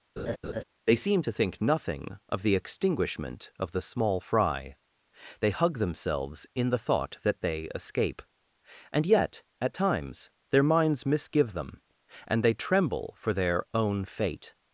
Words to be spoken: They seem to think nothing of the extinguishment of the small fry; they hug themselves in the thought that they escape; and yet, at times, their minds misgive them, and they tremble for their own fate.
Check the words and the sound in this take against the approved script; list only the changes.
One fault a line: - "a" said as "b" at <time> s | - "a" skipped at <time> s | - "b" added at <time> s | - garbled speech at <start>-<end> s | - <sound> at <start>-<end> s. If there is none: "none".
- laugh at 0.2-0.6 s